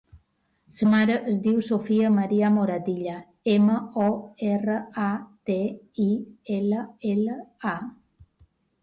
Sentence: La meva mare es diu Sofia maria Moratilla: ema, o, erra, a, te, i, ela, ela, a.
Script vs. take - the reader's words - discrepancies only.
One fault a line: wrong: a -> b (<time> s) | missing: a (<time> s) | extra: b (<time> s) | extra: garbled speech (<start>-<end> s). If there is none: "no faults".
missing: meva (0.8 s)